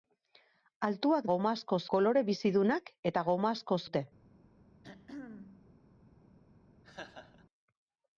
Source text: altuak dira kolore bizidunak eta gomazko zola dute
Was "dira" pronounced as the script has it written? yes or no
no